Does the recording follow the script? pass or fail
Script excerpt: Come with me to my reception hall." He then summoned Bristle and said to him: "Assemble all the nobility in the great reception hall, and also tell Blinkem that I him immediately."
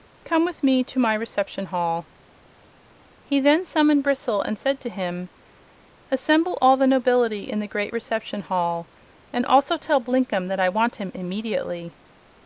fail